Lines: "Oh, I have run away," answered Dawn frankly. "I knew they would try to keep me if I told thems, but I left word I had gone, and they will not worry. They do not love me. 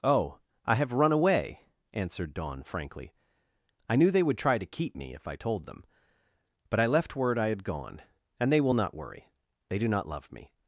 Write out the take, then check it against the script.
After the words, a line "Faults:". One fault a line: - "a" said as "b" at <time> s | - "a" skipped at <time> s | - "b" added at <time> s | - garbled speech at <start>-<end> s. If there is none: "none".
"Oh, I have run away," answered Dawn frankly. "I knew they would try to keep me if I told them, but I left word I had gone, and they will not worry. They do not love me.
Faults:
- "thems" said as "them" at 5.7 s